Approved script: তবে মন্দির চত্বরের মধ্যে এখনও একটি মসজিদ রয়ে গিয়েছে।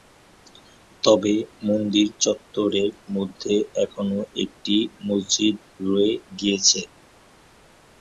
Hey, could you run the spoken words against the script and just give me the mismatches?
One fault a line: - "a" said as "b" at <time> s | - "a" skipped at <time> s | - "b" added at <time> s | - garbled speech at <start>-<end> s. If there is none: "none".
none